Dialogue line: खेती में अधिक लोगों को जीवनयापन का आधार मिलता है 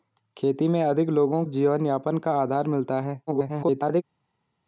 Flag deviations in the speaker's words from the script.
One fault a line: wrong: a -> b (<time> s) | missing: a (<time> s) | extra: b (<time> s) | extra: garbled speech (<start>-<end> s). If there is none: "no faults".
missing: को (1.4 s)
extra: garbled speech (3.3-4.0 s)